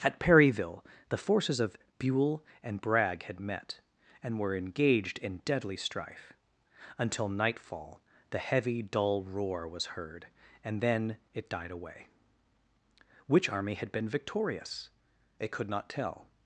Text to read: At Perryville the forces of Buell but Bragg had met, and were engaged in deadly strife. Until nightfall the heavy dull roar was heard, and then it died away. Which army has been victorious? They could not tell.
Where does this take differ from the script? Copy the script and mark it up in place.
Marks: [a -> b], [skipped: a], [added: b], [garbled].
At Perryville the forces of Buell [but -> and] Bragg had met, and were engaged in deadly strife. Until nightfall the heavy dull roar was heard, and then it died away. Which army [has -> had] been victorious? They could not tell.